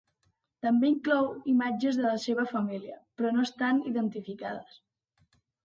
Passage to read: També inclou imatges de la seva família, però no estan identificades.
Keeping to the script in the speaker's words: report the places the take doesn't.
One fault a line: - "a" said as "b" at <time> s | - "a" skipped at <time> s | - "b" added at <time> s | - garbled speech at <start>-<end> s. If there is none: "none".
none